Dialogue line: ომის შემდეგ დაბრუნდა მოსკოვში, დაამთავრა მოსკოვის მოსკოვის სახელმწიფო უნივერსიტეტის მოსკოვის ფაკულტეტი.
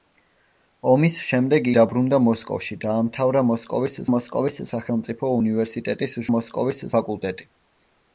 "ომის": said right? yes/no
yes